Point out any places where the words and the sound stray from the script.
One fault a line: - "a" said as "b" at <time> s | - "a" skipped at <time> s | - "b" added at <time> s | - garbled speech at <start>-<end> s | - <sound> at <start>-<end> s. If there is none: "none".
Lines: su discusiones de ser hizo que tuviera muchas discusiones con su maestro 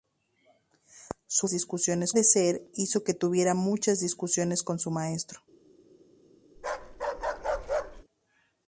- bark at 6.6-8.0 s